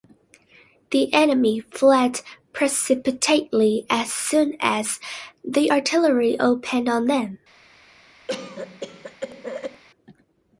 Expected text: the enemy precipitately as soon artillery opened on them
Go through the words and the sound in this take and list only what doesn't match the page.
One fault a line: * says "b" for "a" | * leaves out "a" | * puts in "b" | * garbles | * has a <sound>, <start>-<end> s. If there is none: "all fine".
* puts in "fled"
* puts in "as the"
* has a cough, 8.3-9.8 s